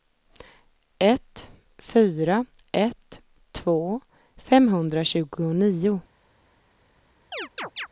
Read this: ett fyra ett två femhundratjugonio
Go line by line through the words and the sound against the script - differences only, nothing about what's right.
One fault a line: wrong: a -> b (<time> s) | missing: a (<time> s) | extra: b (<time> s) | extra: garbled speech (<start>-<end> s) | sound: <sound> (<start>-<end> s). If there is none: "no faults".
sound: chirp (7.3-7.9 s)